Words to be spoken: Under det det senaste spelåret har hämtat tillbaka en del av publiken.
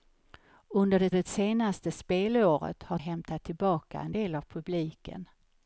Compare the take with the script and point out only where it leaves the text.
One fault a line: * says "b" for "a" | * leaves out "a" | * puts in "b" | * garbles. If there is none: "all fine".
all fine